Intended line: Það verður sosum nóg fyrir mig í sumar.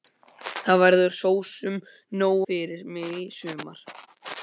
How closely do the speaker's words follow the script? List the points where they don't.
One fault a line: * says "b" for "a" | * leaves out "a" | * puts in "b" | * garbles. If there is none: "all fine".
all fine